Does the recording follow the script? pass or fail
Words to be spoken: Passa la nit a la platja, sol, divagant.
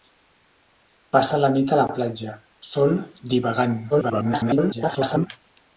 fail